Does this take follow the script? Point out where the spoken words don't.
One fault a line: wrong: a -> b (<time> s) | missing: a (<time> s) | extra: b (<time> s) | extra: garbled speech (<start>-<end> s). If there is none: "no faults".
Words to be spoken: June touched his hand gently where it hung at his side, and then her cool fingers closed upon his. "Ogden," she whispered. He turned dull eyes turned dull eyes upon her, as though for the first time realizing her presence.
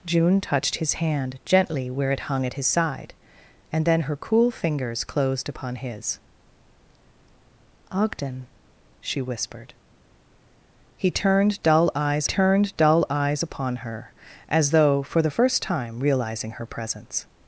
no faults